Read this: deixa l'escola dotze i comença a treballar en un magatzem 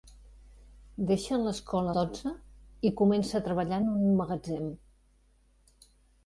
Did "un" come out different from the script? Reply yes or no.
no